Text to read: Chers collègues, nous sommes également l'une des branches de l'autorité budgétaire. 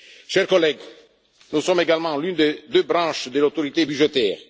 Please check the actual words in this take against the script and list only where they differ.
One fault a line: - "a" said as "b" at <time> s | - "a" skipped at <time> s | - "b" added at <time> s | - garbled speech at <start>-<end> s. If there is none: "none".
- "deux" added at 2.7 s